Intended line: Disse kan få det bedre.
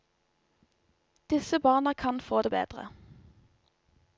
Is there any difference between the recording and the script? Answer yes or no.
yes